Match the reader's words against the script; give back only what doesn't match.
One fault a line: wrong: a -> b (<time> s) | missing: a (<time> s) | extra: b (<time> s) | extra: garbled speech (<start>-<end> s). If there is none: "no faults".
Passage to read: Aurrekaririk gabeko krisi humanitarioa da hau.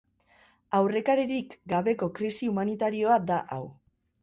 no faults